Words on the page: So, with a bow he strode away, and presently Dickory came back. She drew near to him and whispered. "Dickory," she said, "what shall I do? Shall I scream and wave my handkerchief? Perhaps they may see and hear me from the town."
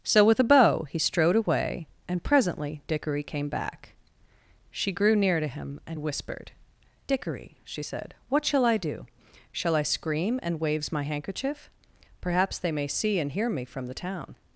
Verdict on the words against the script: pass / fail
fail